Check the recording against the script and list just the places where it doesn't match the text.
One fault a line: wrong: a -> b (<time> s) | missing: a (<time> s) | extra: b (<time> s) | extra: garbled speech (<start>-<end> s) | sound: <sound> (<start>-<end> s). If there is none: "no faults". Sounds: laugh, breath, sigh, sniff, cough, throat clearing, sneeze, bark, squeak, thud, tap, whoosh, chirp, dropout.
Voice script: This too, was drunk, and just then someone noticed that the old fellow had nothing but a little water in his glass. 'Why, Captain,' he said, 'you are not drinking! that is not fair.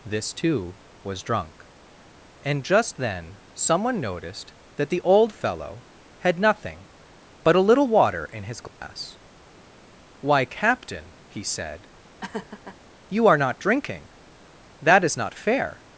sound: dropout (8.7-8.8 s)
sound: laugh (12.2-12.8 s)